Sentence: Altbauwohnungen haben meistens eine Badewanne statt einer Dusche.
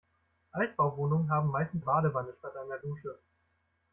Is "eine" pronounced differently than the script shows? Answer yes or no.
yes